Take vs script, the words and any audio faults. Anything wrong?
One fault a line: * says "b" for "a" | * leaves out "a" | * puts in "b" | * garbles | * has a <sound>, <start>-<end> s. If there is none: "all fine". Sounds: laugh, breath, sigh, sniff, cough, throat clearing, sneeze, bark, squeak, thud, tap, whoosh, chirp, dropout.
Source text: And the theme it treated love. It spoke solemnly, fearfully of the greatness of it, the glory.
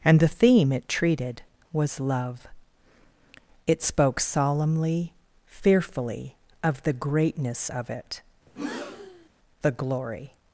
* puts in "was"
* has a breath, 8.5-9.3 s